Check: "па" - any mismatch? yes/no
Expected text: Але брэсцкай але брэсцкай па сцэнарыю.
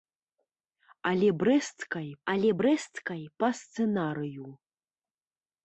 no